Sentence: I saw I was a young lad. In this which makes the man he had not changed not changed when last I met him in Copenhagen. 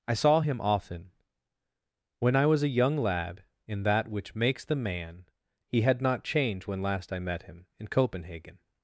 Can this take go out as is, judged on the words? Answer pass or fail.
fail